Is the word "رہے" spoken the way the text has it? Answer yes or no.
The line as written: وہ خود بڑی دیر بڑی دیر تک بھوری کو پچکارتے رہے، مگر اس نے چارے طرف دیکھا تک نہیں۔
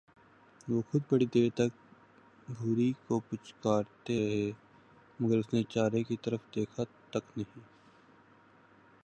yes